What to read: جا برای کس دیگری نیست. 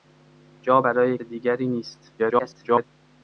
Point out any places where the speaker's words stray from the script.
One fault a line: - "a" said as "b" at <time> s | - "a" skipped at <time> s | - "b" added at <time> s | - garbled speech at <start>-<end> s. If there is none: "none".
- "کس" skipped at 1.2 s
- garbled speech at 2.2-2.8 s